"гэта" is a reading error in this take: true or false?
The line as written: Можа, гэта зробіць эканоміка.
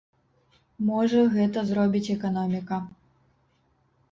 false